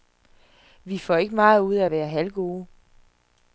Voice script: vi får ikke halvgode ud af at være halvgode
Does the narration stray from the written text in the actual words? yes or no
yes